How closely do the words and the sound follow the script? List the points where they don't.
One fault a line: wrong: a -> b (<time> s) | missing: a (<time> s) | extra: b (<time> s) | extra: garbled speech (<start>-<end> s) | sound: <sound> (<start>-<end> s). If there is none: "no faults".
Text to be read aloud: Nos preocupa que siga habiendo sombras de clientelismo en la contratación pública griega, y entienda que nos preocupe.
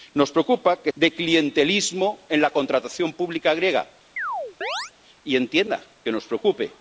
missing: siga habiendo sombras (0.9 s)
sound: chirp (4.2-4.9 s)